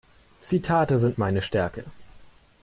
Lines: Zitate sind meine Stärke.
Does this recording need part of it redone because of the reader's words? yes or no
no